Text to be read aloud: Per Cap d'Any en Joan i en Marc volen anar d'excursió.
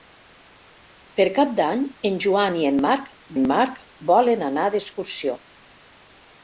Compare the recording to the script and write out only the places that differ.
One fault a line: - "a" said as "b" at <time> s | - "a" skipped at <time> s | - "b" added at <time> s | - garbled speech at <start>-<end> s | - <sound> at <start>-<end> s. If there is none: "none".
- "en Marc" added at 3.4 s